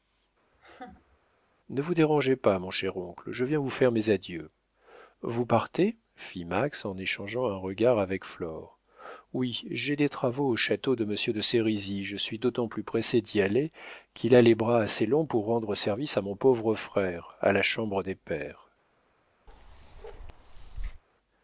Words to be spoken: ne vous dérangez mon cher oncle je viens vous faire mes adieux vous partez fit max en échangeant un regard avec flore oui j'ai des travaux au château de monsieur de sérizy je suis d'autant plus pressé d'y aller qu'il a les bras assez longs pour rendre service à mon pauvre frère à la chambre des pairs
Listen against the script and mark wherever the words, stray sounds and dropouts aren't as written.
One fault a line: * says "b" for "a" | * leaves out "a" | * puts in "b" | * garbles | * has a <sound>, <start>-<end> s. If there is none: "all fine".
* has a laugh, 0.5-1.2 s
* puts in "pas"
* has a bark, 19.5-21.0 s